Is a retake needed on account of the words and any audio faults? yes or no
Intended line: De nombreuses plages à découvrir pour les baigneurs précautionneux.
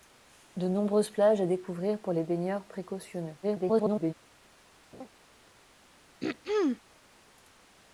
yes